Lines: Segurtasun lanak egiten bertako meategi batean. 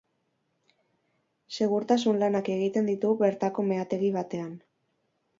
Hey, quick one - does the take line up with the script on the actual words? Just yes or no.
no